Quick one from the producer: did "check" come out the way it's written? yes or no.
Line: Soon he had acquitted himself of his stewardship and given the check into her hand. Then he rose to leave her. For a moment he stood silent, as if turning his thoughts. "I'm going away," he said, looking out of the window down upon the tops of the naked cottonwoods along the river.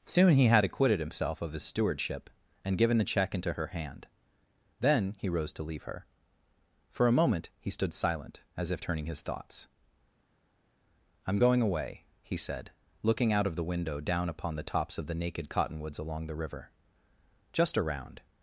yes